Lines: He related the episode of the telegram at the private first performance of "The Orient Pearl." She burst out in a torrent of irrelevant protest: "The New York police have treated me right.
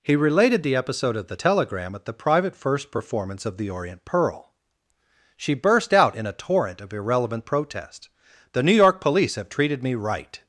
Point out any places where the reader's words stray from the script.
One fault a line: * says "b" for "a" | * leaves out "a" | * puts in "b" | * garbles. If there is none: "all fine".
all fine